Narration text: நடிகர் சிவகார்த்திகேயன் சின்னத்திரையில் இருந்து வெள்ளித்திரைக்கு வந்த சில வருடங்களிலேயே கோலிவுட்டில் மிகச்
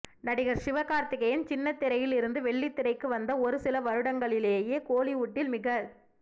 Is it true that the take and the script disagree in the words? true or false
true